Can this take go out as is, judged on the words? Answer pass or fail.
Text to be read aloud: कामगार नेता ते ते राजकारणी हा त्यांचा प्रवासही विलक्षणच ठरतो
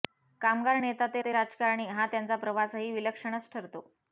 pass